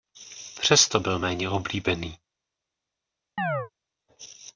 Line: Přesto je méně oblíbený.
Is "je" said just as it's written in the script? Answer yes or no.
no